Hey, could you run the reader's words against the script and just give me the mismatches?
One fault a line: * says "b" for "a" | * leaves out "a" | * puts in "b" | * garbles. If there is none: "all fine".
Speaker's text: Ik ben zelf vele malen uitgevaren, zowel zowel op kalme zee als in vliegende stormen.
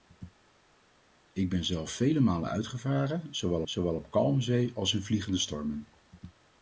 all fine